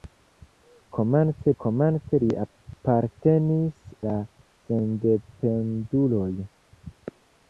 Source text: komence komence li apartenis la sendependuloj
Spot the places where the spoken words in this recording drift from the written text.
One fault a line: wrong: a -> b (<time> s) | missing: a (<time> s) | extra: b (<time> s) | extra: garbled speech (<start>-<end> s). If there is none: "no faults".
no faults